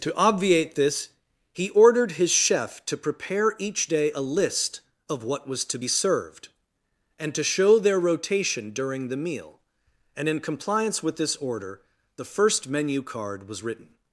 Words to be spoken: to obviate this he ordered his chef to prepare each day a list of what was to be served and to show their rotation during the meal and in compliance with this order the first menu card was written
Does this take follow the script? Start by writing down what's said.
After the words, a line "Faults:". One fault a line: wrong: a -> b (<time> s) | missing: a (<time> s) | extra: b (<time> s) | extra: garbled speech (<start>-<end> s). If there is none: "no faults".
to obviate this he ordered his chef to prepare each day a list of what was to be served and to show their rotation during the meal and in compliance with this order the first menu card was written
Faults:
no faults